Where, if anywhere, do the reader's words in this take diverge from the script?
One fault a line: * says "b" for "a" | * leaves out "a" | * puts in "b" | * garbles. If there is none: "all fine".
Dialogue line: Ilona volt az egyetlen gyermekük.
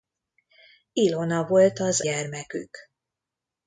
* leaves out "egyetlen"